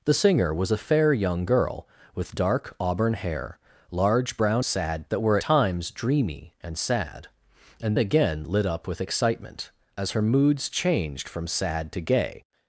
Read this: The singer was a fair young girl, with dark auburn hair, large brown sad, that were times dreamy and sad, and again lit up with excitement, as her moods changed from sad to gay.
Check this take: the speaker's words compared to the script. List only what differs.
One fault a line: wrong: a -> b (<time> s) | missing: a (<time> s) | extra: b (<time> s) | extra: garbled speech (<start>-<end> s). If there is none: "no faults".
no faults